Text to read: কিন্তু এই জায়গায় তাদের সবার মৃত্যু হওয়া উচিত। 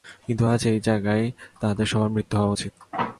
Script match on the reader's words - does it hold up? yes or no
no